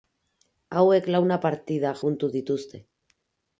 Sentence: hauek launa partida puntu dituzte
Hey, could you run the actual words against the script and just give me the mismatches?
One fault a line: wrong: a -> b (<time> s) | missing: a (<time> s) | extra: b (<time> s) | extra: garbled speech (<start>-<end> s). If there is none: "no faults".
no faults